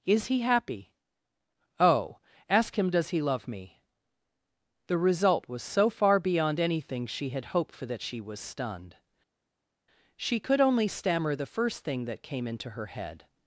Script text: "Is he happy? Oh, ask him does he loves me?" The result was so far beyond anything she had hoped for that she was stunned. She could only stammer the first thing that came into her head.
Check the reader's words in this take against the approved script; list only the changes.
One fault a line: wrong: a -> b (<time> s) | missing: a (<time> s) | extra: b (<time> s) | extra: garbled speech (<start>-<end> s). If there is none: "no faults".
wrong: loves -> love (3.2 s)